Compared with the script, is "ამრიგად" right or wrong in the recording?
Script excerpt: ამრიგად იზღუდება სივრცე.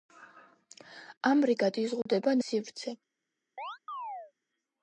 right